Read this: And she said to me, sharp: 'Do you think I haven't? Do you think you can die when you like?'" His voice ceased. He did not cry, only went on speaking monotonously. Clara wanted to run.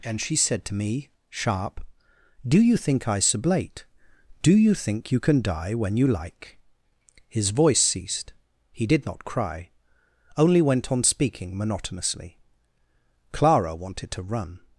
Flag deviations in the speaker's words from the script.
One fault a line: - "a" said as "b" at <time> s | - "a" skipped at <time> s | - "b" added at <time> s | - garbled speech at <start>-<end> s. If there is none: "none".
- "haven't" said as "sublate" at 3.2 s